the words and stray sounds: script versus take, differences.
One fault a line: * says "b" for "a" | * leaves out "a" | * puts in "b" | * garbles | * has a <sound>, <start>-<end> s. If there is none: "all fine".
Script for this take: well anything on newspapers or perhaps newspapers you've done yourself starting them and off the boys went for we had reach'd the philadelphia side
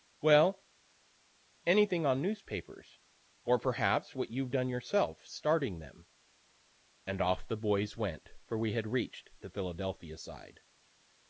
* says "what" for "newspapers"